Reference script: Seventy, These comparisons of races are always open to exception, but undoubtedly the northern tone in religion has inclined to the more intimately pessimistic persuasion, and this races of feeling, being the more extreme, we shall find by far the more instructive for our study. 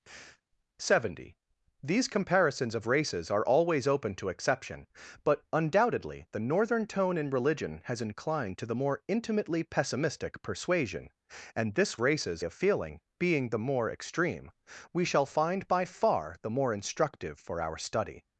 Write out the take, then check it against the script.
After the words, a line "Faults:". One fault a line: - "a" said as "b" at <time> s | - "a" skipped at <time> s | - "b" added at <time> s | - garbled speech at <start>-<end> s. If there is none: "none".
Seventy, These comparisons of races are always open to exception, but undoubtedly the northern tone in religion has inclined to the more intimately pessimistic persuasion, and this races of feeling, being the more extreme, we shall find by far the more instructive for our study.
Faults:
none